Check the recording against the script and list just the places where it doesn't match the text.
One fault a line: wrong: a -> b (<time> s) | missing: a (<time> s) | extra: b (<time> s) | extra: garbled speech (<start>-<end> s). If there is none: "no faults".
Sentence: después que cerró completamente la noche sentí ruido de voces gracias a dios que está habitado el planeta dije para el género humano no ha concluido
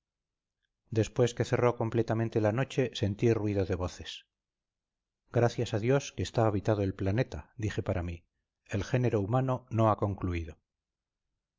extra: mí (8.0 s)